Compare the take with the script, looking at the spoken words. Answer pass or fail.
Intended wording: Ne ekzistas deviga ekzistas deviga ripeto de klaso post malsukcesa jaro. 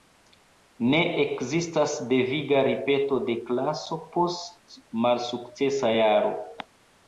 fail